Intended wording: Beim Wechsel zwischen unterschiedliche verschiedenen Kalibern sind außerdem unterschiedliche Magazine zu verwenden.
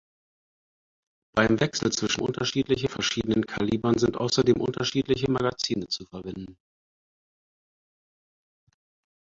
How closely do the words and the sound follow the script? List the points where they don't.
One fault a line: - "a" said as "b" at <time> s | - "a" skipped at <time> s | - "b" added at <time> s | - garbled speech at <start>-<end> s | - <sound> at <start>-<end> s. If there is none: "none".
none